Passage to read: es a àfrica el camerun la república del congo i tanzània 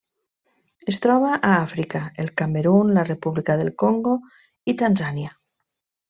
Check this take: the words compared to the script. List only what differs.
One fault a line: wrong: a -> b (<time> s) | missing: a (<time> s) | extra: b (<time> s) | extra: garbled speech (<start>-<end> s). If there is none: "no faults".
extra: troba (1.0 s)